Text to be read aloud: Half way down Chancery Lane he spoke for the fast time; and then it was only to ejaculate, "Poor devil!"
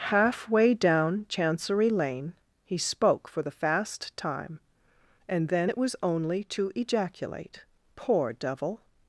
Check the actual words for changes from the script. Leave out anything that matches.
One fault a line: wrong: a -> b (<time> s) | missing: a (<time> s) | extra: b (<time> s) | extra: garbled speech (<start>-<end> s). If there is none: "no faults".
no faults